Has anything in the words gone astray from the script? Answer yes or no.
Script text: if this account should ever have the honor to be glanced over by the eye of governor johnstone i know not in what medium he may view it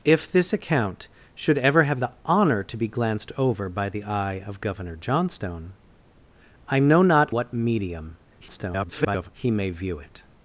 yes